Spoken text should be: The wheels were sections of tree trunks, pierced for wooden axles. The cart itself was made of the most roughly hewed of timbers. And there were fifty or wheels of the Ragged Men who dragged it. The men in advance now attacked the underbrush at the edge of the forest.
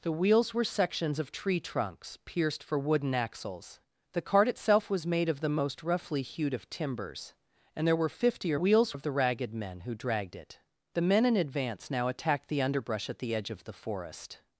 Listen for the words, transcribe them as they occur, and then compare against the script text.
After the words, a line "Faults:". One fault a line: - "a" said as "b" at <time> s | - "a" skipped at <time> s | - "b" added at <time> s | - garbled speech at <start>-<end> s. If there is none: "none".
The wheels were sections of tree trunks, pierced for wooden axles. The cart itself was made of the most roughly hewed of timbers. And there were fifty or wheels of the Ragged Men who dragged it. The men in advance now attacked the underbrush at the edge of the forest.
Faults:
none